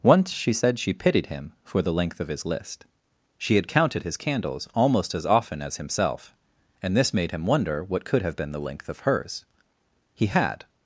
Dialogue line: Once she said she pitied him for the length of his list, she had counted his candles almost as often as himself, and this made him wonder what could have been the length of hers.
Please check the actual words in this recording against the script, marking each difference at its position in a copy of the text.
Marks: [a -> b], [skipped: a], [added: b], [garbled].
Once she said she pitied him for the length of his list, she had counted his candles almost as often as himself, and this made him wonder what could have been the length of hers. [added: He had]